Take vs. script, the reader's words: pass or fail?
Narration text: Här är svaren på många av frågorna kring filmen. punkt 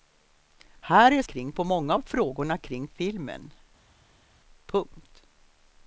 fail